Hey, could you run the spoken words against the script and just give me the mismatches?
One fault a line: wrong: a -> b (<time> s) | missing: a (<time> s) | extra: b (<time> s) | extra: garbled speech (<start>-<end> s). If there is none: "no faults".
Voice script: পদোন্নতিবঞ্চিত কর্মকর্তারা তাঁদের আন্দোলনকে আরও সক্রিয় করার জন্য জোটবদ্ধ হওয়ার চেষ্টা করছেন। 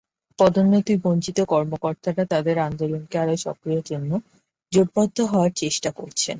missing: করার (3.8 s)